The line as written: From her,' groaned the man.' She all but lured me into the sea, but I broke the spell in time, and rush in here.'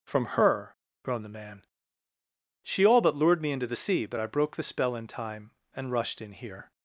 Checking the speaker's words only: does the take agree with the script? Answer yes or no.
no